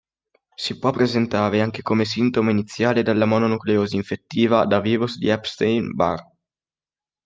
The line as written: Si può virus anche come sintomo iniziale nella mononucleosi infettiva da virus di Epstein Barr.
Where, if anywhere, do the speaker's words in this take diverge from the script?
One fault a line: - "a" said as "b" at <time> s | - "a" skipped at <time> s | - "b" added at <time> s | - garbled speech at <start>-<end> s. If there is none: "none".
- "virus" said as "presentare" at 0.9 s
- "nella" said as "della" at 3.0 s